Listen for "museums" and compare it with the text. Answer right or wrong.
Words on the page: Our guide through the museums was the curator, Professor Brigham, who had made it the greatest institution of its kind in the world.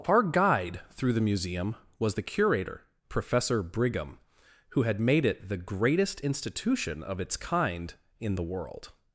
wrong